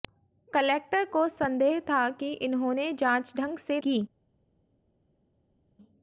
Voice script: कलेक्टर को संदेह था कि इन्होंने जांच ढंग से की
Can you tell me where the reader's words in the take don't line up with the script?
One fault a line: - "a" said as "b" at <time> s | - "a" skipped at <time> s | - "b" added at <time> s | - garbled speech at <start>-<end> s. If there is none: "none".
none